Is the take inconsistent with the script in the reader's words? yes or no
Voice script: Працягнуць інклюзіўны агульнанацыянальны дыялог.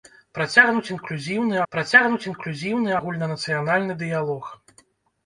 yes